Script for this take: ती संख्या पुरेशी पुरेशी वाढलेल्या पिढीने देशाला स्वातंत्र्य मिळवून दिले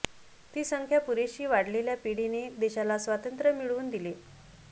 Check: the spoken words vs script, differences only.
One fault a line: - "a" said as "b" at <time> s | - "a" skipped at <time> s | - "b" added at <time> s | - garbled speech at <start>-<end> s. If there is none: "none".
- "पुरेशी" skipped at 1.4 s